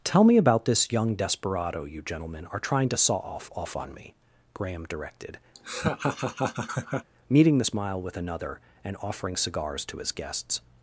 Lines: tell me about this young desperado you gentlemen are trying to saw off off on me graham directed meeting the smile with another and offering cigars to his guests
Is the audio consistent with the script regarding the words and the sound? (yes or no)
no